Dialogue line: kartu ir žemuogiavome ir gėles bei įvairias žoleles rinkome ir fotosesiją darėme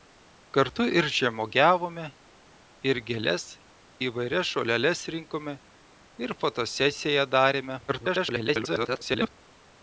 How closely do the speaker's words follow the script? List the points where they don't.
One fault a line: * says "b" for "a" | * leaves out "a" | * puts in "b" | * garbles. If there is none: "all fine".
* leaves out "bei"
* garbles